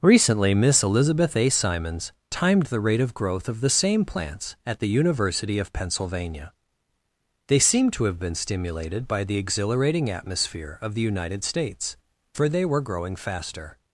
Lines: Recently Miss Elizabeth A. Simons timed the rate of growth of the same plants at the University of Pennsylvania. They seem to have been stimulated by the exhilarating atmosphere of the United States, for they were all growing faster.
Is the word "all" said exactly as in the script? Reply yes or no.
no